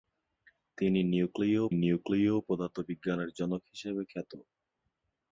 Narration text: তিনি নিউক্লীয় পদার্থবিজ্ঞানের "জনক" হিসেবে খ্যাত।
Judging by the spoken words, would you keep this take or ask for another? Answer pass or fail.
fail